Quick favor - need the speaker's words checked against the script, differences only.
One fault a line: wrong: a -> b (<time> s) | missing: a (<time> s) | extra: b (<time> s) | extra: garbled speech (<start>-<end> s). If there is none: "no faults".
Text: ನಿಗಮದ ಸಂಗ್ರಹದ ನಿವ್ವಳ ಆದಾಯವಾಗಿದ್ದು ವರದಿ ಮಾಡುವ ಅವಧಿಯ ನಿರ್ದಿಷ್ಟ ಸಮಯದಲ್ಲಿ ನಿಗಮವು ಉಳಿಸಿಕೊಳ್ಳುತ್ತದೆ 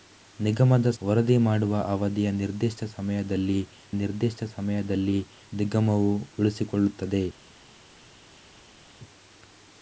missing: ಸಂಗ್ರಹದ ನಿವ್ವಳ ಆದಾಯವಾಗಿದ್ದು (0.9 s)
extra: ನಿರ್ದಿಷ್ಟ ಸಮಯದಲ್ಲಿ (4.0 s)